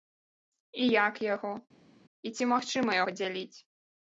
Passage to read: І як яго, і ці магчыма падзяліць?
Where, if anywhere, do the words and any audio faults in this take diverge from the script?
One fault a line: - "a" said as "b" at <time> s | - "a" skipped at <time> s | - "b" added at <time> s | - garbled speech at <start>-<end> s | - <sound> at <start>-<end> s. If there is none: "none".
none